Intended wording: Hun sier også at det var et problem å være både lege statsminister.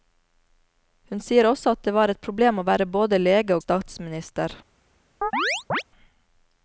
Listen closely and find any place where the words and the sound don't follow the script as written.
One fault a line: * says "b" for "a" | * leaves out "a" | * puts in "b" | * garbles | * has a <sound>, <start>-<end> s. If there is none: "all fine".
* has a chirp, 5.2-5.8 s